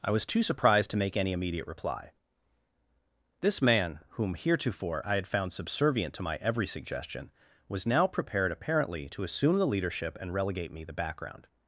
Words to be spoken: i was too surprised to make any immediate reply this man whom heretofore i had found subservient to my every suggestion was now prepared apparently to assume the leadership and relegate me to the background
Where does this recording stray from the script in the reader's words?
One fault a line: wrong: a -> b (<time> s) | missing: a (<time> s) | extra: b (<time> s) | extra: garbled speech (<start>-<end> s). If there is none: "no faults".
missing: to (10.8 s)